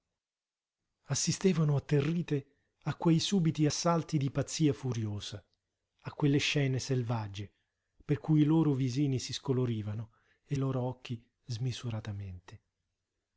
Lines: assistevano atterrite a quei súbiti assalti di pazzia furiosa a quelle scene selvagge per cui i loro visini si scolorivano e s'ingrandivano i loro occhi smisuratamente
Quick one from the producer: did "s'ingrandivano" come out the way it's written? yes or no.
no